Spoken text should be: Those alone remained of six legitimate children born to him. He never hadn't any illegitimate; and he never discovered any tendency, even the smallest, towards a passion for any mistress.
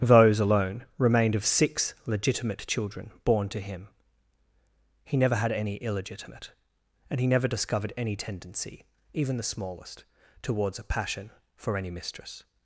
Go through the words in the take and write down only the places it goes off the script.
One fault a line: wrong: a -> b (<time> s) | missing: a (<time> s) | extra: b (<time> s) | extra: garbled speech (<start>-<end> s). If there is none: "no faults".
wrong: hadn't -> had (5.3 s)